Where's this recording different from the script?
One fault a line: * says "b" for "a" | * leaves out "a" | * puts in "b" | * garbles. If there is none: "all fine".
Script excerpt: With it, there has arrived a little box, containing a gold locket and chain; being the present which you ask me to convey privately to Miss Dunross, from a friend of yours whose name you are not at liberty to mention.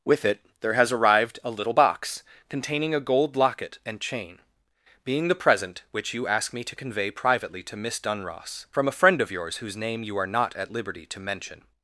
all fine